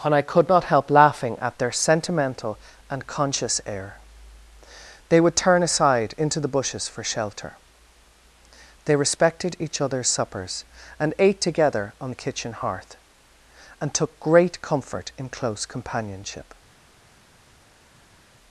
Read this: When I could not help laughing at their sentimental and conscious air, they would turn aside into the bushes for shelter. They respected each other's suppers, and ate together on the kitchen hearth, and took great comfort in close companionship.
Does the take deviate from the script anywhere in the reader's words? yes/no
yes